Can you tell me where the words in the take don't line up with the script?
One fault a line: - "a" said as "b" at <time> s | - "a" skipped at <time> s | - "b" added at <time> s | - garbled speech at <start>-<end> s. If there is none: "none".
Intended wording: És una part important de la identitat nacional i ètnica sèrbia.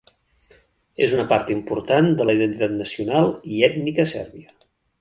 none